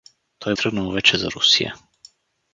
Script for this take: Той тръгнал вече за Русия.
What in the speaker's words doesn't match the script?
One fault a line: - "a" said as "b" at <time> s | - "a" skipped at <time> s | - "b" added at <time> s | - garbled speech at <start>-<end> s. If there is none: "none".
none